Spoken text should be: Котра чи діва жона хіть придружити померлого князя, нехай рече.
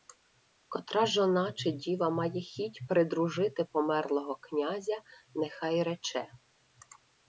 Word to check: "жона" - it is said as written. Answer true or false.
false